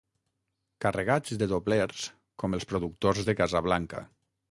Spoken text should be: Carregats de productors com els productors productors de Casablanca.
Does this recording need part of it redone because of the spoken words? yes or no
yes